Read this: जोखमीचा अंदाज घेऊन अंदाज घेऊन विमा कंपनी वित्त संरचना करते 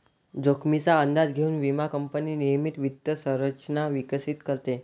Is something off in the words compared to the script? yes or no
yes